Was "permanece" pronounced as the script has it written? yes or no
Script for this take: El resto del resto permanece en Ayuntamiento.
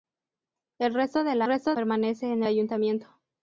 yes